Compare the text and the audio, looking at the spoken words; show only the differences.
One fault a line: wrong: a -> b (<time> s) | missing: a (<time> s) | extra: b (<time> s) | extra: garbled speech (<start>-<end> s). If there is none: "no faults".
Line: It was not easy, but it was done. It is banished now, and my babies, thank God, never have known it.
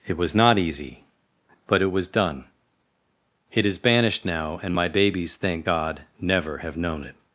no faults